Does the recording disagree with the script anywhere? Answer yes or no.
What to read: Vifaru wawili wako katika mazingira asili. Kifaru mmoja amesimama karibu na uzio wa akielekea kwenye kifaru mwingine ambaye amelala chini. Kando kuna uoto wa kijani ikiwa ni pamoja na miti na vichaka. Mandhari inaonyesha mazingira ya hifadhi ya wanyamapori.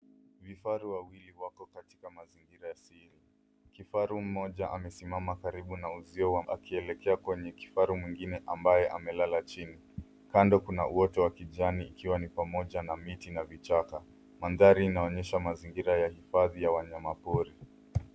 no